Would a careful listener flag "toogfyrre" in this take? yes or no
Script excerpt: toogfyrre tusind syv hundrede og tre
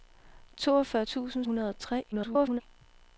no